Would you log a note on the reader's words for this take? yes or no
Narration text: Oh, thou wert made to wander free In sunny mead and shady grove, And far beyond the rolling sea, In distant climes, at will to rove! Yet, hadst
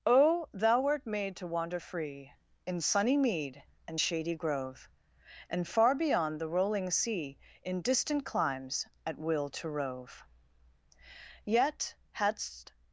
no